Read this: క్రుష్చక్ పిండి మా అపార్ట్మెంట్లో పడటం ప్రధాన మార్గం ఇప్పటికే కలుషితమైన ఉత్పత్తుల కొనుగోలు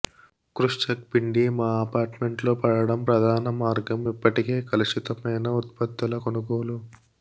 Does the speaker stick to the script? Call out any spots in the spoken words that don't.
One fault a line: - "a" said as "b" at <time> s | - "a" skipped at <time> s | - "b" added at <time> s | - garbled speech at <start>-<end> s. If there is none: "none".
none